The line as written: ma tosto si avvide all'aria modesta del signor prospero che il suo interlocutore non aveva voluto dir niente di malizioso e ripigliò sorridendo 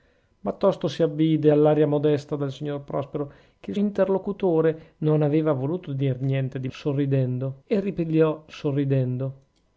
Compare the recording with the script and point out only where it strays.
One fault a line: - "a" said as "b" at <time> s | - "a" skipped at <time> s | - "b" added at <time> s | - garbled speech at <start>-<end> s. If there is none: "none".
- "suo" skipped at 3.8 s
- "malizioso" said as "sorridendo" at 6.7 s